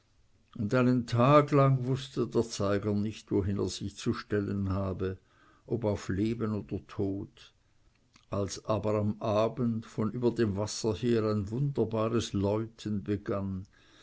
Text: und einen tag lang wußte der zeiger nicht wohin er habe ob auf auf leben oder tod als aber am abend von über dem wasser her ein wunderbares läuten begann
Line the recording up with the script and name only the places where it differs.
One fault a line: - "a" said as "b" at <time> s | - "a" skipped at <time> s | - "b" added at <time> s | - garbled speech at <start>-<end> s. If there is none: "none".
- "sich zu stellen" added at 3.7 s
- "auf" skipped at 6.1 s